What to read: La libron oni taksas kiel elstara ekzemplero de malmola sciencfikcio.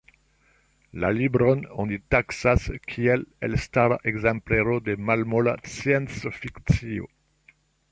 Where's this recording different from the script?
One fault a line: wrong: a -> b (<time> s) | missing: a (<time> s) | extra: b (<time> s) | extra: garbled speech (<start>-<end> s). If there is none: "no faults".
no faults